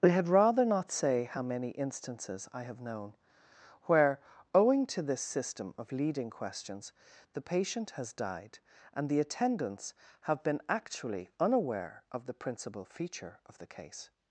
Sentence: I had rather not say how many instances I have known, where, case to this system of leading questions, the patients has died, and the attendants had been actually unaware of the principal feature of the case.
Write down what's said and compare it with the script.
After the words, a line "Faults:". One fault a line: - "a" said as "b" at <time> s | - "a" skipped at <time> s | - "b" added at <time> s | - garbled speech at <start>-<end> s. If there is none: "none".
I had rather not say how many instances I have known, where, owing to this system of leading questions, the patient has died, and the attendants have been actually unaware of the principal feature of the case.
Faults:
- "case" said as "owing" at 4.5 s
- "patients" said as "patient" at 7.4 s
- "had" said as "have" at 10.2 s